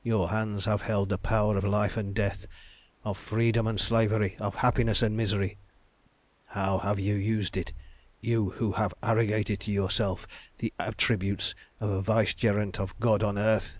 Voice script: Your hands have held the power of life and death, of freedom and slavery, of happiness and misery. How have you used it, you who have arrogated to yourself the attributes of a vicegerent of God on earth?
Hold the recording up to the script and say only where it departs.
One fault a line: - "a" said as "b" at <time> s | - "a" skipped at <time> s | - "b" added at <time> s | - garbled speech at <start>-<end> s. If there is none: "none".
none